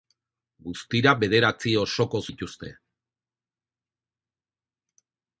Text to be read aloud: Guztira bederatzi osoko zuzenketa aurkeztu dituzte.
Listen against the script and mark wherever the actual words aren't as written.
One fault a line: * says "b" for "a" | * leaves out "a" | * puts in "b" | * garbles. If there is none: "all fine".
* leaves out "zuzenketa aurkeztu"